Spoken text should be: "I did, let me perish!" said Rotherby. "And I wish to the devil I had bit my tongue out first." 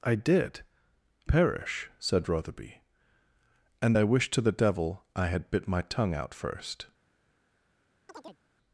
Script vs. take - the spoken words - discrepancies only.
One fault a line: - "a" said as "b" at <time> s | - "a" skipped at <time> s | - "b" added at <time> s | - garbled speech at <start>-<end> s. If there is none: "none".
- "let me" skipped at 0.6 s